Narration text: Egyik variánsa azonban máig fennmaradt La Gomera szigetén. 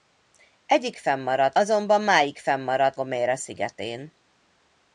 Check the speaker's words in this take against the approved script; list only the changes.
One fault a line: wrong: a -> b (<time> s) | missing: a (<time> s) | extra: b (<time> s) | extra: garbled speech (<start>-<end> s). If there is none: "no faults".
wrong: variánsa -> fennmaradt (1.0 s)
missing: La (3.0 s)